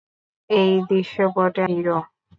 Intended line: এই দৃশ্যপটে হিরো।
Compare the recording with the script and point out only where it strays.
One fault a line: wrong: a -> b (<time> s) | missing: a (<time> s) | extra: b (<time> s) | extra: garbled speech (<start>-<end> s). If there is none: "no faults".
no faults